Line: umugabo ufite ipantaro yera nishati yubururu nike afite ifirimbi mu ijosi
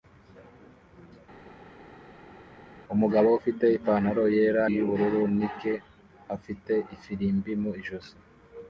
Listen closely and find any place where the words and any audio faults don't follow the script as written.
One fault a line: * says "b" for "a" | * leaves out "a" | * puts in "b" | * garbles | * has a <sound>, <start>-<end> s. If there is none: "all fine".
* leaves out "nishati"